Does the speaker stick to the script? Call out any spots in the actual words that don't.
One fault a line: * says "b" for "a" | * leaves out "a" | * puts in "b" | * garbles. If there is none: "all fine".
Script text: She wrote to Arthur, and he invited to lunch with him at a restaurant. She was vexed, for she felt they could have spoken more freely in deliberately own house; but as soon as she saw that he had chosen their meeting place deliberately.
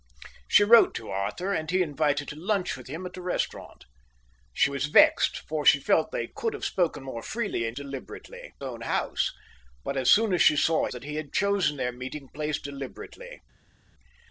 all fine